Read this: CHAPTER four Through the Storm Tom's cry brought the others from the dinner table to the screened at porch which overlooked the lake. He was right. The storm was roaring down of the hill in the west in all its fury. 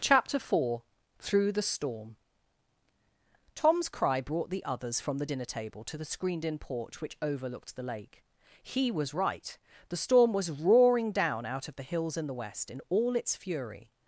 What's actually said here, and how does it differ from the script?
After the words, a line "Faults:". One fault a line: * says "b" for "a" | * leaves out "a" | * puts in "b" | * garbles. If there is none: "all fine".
CHAPTER four Through the Storm Tom's cry brought the others from the dinner table to the screened in porch which overlooked the lake. He was right. The storm was roaring down out of the hills in the west in all its fury.
Faults:
* says "in" for "at"
* puts in "out"
* says "hills" for "hill"